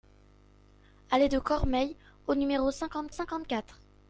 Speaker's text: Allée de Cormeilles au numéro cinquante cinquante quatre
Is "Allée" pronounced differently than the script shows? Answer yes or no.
no